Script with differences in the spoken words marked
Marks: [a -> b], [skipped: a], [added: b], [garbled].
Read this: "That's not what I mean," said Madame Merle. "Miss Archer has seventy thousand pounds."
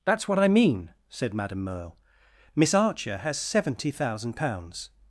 "That's [skipped: not] what I mean," said Madame Merle. "Miss Archer has seventy thousand pounds."